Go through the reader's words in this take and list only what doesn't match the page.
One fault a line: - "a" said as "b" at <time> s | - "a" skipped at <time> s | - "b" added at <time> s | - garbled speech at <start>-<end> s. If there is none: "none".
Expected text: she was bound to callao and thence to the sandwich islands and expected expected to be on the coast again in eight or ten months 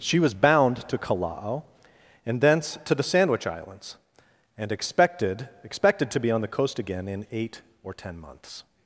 none